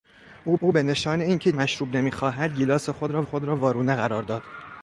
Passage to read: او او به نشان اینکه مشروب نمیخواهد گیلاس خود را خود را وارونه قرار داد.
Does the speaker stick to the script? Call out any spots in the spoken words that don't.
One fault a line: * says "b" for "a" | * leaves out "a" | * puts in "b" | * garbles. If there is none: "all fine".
all fine